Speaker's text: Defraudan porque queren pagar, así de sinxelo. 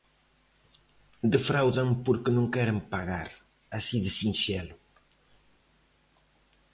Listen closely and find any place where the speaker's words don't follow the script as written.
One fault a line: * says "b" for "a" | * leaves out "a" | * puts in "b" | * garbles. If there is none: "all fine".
* puts in "non"